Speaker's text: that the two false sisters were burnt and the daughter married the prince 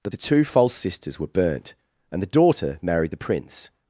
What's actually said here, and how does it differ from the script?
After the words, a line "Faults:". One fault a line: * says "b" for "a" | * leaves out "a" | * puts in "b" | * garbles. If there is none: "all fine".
that the two false sisters were burnt and the daughter married the prince
Faults:
all fine